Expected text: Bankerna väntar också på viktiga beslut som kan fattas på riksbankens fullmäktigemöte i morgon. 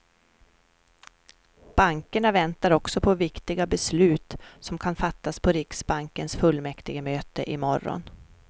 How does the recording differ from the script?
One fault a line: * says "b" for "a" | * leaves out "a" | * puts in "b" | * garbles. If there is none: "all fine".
all fine